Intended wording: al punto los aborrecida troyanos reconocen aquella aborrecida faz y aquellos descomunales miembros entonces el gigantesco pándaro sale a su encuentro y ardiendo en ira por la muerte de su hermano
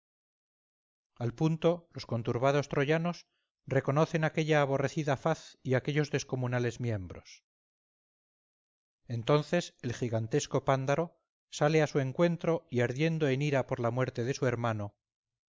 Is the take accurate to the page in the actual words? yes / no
no